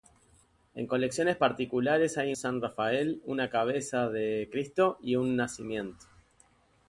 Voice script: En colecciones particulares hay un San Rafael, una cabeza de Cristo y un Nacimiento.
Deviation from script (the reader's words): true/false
true